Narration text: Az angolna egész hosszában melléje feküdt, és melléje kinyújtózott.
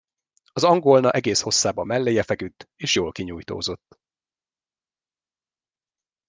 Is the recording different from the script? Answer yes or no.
yes